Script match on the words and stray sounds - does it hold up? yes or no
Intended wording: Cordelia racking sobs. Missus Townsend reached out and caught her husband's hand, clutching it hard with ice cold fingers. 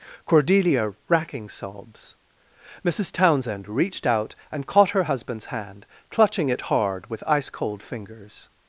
yes